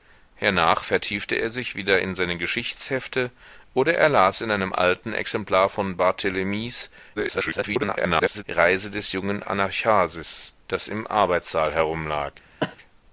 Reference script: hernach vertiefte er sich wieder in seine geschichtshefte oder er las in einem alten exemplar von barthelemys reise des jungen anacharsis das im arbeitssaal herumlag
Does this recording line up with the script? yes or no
no